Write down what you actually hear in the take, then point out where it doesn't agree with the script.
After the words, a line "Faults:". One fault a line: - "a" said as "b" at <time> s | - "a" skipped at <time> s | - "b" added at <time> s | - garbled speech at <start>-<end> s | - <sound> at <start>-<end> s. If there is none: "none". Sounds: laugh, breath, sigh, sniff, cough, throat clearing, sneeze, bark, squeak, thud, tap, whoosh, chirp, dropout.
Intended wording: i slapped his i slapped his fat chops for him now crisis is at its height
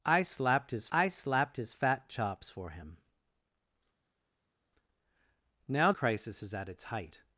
i slapped his i slapped his fat chops for him now crisis is at its height
Faults:
none